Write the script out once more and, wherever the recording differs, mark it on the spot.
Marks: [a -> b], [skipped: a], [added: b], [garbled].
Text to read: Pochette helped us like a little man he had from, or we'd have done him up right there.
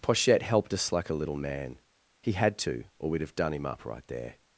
Pochette helped us like a little man he had [from, -> to] or we'd have done him up right there.